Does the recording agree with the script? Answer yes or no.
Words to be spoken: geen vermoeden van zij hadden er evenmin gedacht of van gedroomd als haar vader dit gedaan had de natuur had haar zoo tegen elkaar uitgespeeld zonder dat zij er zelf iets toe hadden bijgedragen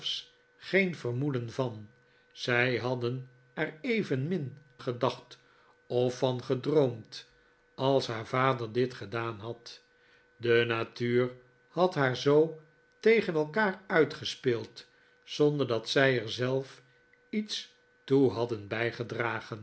yes